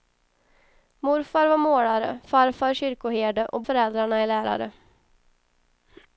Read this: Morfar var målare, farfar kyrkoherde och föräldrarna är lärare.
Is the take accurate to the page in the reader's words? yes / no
yes